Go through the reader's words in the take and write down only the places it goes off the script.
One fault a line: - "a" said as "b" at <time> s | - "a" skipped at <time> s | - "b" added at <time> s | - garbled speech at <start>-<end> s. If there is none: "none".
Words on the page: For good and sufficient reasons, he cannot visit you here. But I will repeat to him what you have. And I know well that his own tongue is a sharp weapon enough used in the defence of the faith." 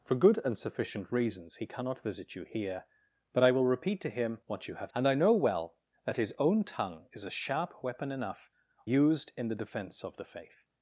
none